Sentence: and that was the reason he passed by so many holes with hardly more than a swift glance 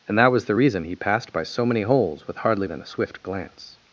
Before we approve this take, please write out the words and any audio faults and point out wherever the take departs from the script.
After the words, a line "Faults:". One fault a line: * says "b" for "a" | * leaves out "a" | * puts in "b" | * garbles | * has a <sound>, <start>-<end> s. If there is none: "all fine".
and that was the reason he passed by so many holes with hardly than a swift glance
Faults:
* leaves out "more"